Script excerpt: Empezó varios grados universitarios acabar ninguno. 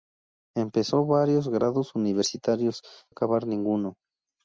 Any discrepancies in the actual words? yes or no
no